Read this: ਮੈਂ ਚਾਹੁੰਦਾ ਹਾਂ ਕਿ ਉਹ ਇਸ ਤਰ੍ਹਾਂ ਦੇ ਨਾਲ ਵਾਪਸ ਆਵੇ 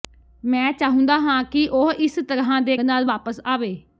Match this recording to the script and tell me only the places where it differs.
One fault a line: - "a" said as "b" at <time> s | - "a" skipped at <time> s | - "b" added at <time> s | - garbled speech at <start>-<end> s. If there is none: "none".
none